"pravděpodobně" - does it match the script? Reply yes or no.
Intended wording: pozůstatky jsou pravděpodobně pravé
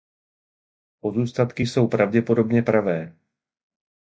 yes